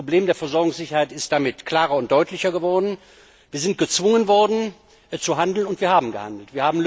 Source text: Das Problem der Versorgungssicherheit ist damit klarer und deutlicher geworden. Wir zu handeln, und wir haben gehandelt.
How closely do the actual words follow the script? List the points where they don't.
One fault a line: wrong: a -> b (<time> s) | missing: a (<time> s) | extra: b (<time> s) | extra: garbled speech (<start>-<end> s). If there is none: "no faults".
extra: sind gezwungen worden (3.6 s)